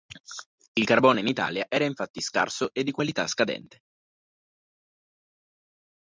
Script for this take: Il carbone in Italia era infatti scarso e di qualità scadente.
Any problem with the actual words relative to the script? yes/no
no